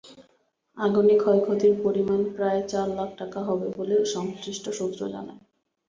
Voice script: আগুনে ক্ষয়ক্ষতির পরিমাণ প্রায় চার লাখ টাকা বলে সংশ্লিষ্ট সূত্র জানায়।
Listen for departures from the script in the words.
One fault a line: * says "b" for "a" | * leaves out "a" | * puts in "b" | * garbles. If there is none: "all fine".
* puts in "হবে"